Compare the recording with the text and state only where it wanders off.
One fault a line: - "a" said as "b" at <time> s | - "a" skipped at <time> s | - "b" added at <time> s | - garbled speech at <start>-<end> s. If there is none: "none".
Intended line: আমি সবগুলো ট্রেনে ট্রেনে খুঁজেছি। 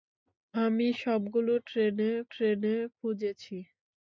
none